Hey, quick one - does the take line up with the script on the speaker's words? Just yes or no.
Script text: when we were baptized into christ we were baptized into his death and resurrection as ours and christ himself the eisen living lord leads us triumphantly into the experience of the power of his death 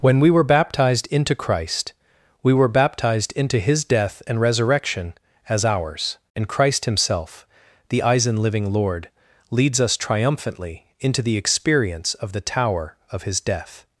no